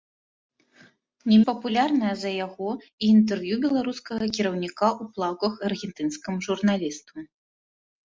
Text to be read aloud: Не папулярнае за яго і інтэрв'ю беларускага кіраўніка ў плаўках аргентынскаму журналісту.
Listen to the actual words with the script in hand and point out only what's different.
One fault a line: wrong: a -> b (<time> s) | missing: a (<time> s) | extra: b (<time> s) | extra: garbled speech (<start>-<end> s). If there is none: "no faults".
no faults